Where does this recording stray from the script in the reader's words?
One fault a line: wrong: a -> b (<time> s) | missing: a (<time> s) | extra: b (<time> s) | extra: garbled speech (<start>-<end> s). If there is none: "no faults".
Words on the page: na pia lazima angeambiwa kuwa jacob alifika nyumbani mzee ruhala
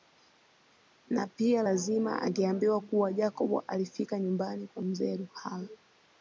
extra: kwa (4.7 s)